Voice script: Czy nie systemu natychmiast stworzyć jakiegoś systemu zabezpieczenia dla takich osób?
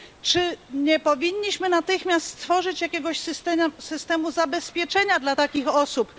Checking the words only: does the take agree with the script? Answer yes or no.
no